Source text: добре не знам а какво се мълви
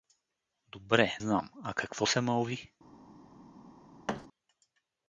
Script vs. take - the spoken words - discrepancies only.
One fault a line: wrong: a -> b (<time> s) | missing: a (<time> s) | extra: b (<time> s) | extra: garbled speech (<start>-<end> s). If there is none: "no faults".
missing: не (1.2 s)